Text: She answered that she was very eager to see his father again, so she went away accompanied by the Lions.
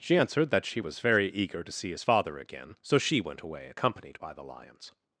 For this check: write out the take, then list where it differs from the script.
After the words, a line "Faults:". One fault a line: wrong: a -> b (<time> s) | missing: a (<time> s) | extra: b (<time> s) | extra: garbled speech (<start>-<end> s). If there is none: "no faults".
She answered that she was very eager to see his father again, so she went away accompanied by the Lions.
Faults:
no faults